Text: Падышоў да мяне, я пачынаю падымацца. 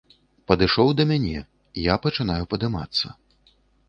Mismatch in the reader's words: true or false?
false